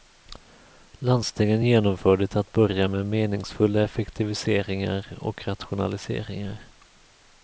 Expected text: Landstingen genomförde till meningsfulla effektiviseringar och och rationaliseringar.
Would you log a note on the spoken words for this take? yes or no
yes